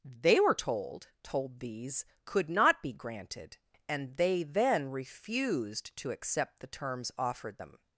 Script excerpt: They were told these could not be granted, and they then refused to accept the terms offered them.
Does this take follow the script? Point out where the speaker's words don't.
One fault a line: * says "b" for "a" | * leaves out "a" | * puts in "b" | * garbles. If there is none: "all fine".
* puts in "told"